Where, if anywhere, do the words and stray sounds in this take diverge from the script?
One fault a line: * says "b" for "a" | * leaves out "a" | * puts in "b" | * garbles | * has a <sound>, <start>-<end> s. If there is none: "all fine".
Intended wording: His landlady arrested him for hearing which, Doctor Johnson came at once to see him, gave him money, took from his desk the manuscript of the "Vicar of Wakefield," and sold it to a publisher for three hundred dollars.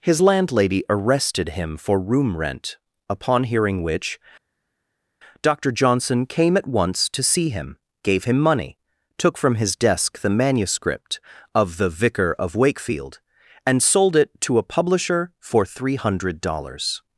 * puts in "room rent upon"